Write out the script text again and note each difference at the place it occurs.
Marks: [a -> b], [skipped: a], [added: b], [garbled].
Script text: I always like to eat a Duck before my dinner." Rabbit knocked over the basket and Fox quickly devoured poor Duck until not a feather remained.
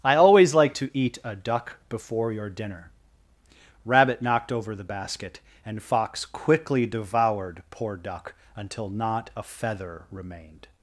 I always like to eat a Duck before [my -> your] dinner." Rabbit knocked over the basket and Fox quickly devoured poor Duck until not a feather remained.